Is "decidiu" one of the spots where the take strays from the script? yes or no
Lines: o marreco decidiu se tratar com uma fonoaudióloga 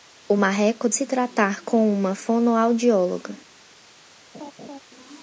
yes